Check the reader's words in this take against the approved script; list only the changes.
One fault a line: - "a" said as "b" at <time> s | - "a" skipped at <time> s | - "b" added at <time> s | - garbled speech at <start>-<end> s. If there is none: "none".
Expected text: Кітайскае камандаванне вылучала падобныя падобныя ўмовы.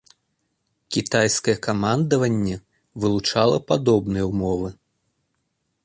- "падобныя" skipped at 4.3 s